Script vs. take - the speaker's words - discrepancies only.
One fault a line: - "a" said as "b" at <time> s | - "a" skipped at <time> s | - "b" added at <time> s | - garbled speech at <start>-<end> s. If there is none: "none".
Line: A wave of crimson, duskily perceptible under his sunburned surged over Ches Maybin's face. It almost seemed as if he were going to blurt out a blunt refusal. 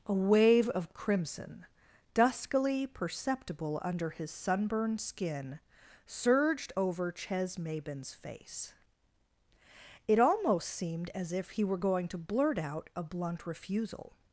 - "skin" added at 5.0 s